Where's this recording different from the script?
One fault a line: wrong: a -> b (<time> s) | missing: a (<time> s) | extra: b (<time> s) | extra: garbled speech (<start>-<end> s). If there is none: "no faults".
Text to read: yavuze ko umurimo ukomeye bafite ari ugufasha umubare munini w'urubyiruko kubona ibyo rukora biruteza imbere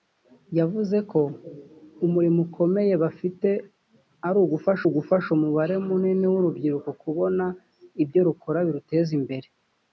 extra: ugufasha (4.9 s)